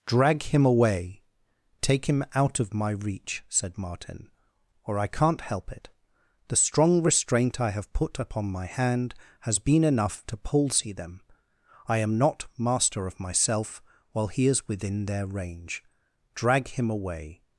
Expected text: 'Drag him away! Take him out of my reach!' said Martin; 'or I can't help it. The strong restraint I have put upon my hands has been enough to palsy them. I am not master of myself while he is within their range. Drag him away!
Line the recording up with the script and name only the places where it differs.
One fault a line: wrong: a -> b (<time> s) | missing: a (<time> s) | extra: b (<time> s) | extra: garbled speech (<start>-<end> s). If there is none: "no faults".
wrong: hands -> hand (8.7 s)